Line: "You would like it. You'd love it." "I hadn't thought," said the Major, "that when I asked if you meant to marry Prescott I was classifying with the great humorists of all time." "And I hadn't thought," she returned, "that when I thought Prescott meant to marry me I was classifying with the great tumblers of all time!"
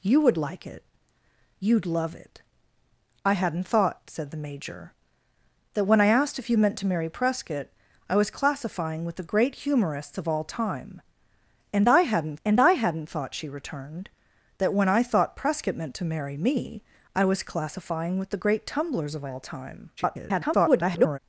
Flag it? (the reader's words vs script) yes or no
yes